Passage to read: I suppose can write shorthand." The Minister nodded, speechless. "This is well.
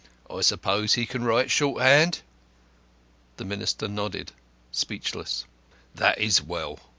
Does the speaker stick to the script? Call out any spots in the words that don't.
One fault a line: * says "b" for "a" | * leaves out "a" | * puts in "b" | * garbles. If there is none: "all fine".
* puts in "he"
* says "That" for "This"